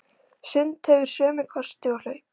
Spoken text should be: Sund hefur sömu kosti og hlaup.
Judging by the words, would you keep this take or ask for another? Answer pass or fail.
pass